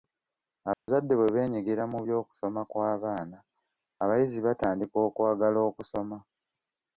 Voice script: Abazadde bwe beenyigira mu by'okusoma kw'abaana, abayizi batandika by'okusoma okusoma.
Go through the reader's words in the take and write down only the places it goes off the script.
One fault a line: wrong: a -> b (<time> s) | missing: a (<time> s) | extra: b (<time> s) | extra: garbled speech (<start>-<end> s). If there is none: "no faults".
wrong: by'okusoma -> okwagala (5.1 s)